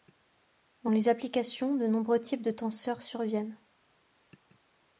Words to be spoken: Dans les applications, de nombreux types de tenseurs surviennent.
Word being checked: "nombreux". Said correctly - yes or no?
yes